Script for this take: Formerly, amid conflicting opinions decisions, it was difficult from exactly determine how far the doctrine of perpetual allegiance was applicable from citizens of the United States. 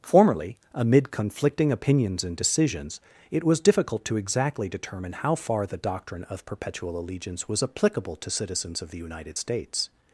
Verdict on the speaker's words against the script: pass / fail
fail